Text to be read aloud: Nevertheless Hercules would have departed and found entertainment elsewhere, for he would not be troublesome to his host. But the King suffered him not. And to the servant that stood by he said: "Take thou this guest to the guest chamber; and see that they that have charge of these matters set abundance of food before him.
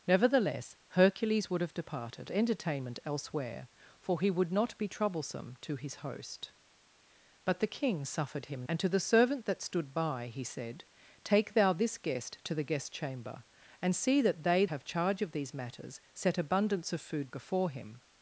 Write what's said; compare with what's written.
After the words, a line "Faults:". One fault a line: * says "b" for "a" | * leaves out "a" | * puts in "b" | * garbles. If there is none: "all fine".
Nevertheless Hercules would have departed entertainment elsewhere, for he would not be troublesome to his host. But the King suffered him. And to the servant that stood by he said: "Take thou this guest to the guest chamber; and see that they have charge of these matters set abundance of food before him.
Faults:
* leaves out "and found"
* leaves out "not"
* leaves out "that"